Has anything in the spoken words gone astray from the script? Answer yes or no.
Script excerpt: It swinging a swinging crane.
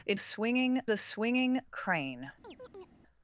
no